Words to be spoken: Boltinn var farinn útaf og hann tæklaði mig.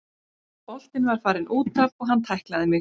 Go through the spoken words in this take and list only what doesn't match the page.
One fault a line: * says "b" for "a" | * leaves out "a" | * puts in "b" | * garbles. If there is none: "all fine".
all fine